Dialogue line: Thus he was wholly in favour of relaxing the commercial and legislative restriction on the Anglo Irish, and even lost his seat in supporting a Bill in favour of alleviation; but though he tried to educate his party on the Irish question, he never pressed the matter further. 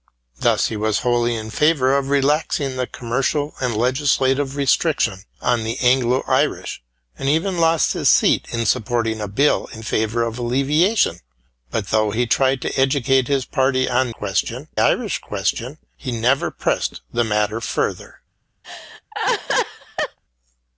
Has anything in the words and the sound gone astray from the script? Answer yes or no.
yes